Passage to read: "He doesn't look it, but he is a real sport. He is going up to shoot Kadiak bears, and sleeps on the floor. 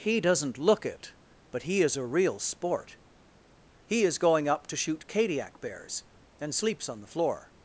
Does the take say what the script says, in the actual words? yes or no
yes